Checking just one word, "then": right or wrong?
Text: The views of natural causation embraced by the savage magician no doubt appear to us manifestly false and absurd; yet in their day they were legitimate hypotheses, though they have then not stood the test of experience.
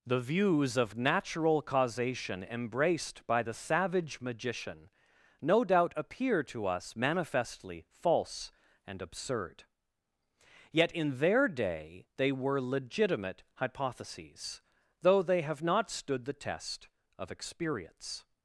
wrong